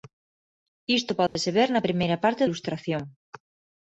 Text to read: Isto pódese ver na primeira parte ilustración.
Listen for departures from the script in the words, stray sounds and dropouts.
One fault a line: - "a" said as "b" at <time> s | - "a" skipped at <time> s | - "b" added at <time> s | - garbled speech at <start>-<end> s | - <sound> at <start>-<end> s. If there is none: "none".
- dropout at 1.3-1.4 s